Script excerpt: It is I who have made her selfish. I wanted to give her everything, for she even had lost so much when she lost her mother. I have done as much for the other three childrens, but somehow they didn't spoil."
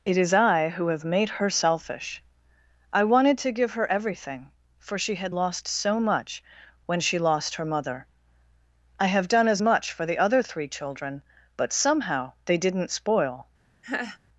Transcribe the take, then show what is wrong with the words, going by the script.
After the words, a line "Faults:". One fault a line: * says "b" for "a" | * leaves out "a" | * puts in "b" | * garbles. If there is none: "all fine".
It is I who have made her selfish. I wanted to give her everything, for she had lost so much when she lost her mother. I have done as much for the other three children, but somehow they didn't spoil."
Faults:
* leaves out "even"
* says "children" for "childrens"